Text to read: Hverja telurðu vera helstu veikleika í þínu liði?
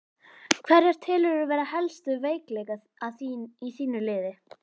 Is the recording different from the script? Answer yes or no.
no